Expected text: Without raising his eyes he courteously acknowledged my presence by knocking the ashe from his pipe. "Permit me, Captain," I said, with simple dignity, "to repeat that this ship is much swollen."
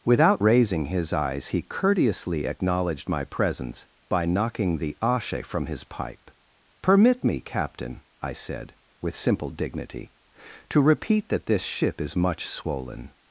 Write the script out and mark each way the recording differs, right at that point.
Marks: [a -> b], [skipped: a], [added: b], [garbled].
Without raising his eyes he courteously acknowledged my presence by knocking the ashe from his pipe. "Permit me, Captain," I said, with simple dignity, "to repeat that this ship is much swollen."